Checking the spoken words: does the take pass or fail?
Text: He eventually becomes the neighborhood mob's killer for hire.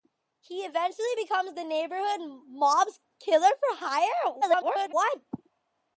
fail